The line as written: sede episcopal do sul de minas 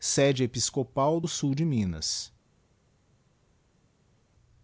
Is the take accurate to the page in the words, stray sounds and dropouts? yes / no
yes